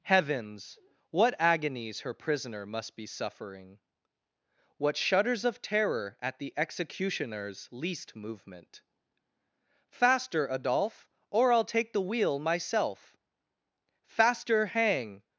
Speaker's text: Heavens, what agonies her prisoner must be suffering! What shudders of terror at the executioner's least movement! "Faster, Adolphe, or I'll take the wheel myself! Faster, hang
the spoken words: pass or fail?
pass